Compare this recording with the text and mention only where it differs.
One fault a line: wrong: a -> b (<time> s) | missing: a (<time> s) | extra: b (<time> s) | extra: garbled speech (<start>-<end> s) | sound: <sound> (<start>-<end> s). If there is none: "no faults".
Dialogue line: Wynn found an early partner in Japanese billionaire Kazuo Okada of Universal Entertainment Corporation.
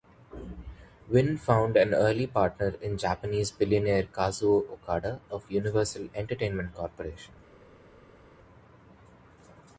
no faults